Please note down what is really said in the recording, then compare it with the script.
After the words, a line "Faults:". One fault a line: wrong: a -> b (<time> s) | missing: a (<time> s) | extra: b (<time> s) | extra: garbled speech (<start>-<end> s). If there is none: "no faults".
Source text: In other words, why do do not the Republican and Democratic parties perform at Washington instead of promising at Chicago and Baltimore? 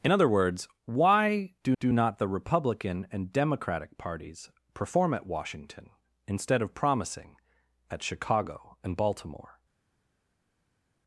In other words, why do do not the Republican and Democratic parties perform at Washington instead of promising at Chicago and Baltimore?
Faults:
no faults